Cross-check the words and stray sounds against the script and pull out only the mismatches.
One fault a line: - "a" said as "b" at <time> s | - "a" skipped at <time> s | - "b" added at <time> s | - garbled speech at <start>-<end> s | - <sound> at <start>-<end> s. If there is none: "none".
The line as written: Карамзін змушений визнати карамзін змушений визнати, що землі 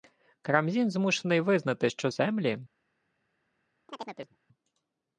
- "карамзін змушений визнати" skipped at 1.9 s
- chirp at 3.9-4.4 s